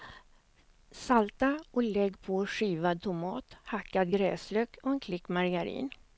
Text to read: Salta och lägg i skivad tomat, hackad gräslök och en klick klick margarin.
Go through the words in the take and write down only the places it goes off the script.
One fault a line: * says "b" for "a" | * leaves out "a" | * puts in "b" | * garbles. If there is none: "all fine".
* says "på" for "i"
* leaves out "klick"